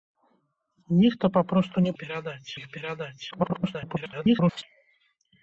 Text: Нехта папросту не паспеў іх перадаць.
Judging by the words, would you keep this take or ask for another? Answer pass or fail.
fail